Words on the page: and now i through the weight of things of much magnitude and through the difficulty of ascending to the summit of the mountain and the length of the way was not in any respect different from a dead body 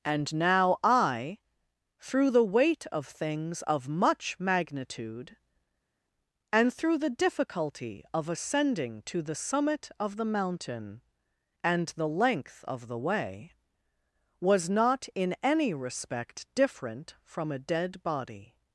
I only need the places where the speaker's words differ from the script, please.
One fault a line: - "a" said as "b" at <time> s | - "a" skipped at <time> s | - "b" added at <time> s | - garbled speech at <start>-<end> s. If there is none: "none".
none